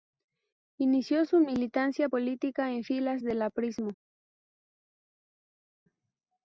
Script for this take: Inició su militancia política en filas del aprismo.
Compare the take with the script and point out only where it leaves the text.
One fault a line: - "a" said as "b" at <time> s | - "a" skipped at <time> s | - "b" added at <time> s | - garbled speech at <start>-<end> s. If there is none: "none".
none